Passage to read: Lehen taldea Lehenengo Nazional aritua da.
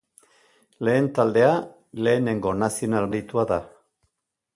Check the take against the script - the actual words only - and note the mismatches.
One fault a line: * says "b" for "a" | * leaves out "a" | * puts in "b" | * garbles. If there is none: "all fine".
all fine